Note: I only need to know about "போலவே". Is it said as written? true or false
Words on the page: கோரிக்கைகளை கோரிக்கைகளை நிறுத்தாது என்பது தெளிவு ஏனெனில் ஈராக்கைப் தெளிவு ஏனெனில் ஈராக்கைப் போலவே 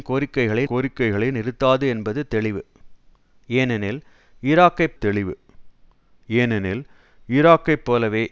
true